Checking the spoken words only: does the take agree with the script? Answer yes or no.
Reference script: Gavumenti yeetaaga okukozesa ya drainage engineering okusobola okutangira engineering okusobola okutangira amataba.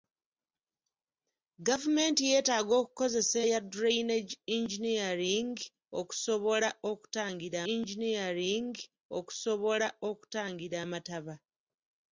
yes